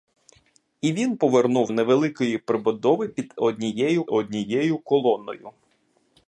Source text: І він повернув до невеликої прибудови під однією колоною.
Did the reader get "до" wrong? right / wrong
wrong